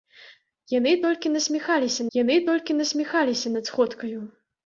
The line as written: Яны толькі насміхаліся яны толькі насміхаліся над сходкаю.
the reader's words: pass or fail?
pass